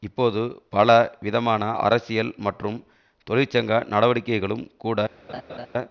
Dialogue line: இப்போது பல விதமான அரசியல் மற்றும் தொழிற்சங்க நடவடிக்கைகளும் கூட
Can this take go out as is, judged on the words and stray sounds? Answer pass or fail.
fail